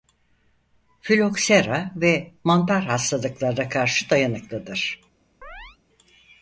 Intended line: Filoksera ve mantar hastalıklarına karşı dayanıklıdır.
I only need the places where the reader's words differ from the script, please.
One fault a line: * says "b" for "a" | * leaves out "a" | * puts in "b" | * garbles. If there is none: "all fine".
all fine